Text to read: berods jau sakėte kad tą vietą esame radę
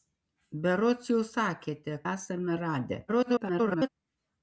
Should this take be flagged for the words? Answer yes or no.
yes